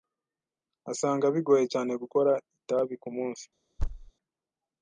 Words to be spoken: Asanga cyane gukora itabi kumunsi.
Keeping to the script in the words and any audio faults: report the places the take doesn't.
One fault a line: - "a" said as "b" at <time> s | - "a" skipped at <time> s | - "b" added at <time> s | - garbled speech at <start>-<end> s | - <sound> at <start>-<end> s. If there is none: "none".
- "bigoye" added at 1.4 s
- thud at 3.8-4.1 s